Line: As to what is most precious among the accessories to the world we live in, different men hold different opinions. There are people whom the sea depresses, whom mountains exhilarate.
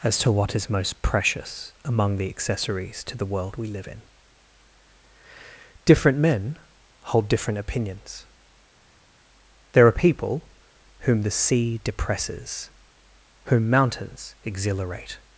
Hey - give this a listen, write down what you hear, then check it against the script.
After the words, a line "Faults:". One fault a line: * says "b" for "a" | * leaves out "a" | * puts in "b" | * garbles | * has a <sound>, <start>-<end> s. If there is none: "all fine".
As to what is most precious among the accessories to the world we live in, different men hold different opinions. There are people whom the sea depresses, whom mountains exhilarate.
Faults:
all fine